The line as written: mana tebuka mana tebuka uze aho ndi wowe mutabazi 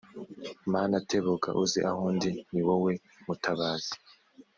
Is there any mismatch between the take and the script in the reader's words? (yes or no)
yes